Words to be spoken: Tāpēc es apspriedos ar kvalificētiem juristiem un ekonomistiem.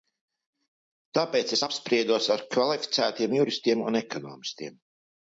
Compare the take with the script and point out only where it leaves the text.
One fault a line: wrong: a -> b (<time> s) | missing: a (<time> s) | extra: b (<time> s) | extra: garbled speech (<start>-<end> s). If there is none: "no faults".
no faults